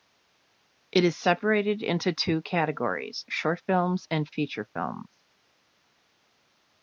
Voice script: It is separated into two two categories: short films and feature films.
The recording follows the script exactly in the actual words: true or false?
false